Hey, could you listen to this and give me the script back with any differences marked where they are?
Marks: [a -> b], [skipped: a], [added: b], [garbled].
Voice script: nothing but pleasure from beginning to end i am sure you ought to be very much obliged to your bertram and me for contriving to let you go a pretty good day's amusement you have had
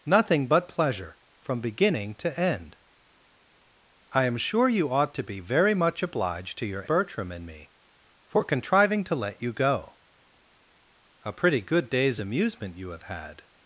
nothing but pleasure from beginning to end i am sure you ought to be very much obliged to your bertram and me for contriving to let you go a pretty good day's amusement you have had